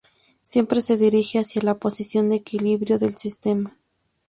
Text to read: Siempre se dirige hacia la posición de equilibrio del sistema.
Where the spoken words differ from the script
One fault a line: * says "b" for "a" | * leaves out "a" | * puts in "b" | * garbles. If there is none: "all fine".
all fine